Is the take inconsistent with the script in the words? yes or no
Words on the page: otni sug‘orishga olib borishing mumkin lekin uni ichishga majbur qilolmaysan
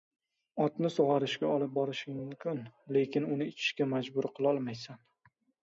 no